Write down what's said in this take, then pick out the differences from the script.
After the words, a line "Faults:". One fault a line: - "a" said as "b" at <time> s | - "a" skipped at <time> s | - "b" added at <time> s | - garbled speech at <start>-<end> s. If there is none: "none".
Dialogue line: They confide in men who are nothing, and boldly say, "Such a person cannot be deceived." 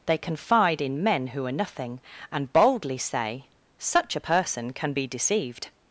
They confide in men who are nothing, and boldly say, "Such a person can be deceived."
Faults:
- "cannot" said as "can" at 4.7 s